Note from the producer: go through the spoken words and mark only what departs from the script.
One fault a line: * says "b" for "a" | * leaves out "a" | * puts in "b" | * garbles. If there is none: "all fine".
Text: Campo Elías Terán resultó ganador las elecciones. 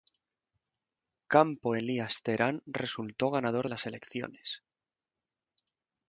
all fine